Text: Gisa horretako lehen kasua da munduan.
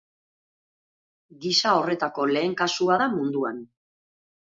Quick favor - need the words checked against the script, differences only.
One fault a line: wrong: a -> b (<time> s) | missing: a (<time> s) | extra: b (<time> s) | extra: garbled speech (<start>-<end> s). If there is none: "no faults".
no faults